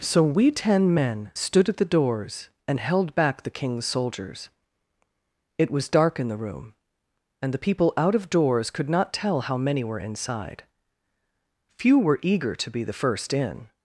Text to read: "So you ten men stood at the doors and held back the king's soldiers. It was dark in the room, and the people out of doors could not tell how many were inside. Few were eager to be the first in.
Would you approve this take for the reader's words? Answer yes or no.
no